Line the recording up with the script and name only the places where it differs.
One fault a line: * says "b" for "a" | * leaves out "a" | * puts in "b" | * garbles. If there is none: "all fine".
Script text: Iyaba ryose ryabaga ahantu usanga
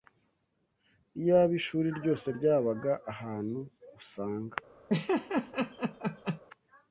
* puts in "ishuri"